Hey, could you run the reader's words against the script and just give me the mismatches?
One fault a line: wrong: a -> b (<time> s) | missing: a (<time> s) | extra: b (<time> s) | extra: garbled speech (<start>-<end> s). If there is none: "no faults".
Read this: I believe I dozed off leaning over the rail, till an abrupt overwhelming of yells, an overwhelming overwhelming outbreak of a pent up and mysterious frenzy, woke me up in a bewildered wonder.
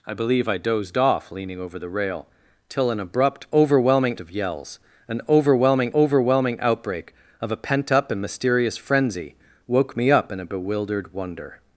no faults